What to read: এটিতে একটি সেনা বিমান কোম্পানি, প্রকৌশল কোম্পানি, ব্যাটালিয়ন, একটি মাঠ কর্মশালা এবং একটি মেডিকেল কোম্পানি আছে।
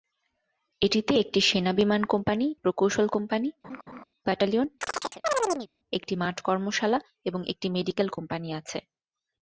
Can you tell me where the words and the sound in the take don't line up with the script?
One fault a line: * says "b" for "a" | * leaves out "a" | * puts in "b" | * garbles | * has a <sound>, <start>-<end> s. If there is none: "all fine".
* has a laugh, 3.6-4.0 s
* has a chirp, 4.8-5.7 s